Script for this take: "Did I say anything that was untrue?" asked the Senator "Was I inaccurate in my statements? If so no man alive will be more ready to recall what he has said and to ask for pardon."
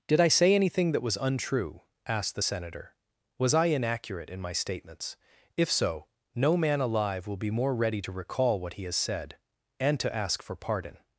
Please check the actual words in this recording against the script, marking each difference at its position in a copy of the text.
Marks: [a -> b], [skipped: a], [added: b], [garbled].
"Did I say anything that was untrue?" asked the Senator "Was I inaccurate in my statements? If so no man alive will be more ready to recall what he has said and to ask for pardon."